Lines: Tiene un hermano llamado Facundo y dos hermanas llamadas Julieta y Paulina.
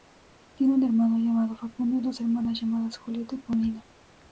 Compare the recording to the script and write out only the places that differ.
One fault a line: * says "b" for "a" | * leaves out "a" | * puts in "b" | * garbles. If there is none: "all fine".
all fine